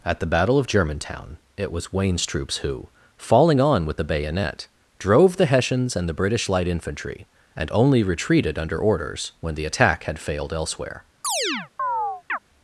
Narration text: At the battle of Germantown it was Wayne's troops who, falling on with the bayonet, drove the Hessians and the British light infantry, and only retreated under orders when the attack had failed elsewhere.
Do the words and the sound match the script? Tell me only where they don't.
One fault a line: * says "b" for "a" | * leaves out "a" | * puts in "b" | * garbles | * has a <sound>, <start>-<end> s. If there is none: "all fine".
* has a chirp, 11.2-12.4 s